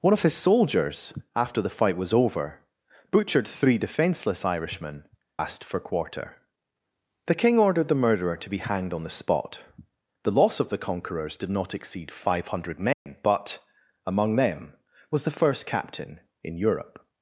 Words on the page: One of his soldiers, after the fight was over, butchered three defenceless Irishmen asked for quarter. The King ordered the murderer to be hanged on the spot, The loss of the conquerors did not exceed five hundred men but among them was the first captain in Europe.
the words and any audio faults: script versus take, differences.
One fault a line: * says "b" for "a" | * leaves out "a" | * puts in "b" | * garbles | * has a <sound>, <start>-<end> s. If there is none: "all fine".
* has a dropout, 12.9-13.1 s